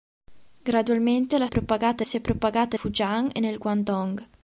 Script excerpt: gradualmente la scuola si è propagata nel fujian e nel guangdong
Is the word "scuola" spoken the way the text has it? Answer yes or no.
no